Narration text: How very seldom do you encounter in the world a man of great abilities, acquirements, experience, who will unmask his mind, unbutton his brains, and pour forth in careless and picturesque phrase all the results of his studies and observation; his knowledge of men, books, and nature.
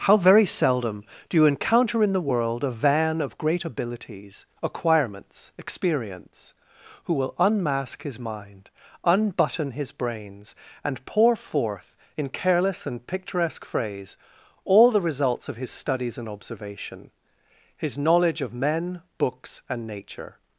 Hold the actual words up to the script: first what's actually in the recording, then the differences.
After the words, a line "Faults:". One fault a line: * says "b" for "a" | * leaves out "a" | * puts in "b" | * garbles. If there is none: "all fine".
How very seldom do you encounter in the world a van of great abilities, acquirements, experience, who will unmask his mind, unbutton his brains, and pour forth in careless and picturesque phrase all the results of his studies and observation; his knowledge of men, books, and nature.
Faults:
* says "van" for "man"